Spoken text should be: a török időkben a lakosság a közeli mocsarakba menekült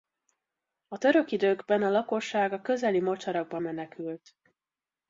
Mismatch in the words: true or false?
false